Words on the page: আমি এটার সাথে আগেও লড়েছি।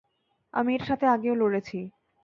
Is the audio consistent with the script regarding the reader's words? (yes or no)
yes